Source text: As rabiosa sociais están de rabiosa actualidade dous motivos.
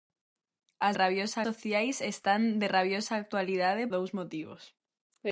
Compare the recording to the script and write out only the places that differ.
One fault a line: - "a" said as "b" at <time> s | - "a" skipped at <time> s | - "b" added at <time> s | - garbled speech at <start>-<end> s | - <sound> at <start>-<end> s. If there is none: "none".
none